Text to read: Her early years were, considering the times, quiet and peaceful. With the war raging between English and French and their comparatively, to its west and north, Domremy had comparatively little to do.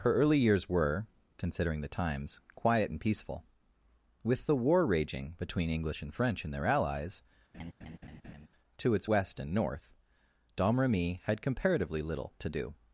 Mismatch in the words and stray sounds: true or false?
true